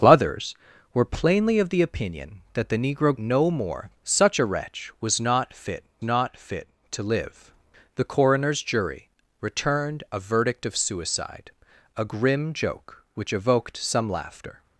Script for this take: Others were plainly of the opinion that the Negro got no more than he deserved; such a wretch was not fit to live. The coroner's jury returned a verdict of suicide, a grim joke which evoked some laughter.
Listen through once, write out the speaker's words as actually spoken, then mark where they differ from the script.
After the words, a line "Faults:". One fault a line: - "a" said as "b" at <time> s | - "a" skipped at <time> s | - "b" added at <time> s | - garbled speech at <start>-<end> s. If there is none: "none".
Others were plainly of the opinion that the Negro no more; such a wretch was not fit not fit to live. The coroner's jury returned a verdict of suicide, a grim joke which evoked some laughter.
Faults:
- "got" skipped at 3.1 s
- "than he deserved" skipped at 3.9 s
- "not fit" added at 6.0 s